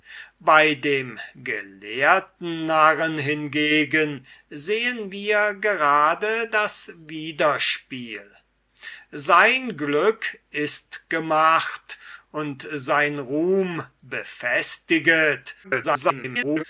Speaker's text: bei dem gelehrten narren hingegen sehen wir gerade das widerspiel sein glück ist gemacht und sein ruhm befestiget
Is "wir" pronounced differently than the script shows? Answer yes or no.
no